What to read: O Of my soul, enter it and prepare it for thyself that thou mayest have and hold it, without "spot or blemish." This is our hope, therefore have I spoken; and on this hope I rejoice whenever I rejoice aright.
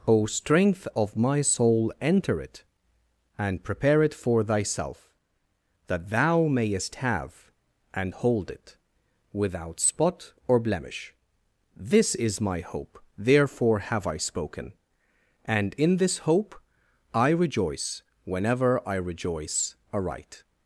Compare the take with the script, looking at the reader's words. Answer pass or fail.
fail